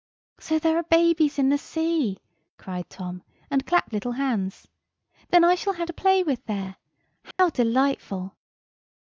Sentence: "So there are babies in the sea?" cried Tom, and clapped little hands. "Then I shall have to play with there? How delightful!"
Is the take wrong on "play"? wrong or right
right